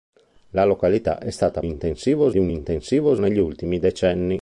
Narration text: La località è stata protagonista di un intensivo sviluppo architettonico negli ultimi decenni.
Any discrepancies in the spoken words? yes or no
yes